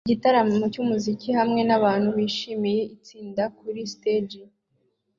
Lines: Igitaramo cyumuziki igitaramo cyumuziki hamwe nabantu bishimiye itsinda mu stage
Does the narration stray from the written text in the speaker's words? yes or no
yes